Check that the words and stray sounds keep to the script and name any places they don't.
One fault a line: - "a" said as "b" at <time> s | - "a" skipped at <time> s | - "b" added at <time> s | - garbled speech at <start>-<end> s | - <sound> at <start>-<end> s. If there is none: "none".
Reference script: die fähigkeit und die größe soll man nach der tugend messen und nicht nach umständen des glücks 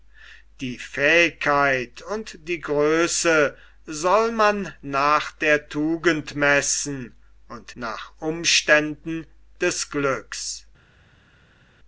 - "nicht" skipped at 7.8 s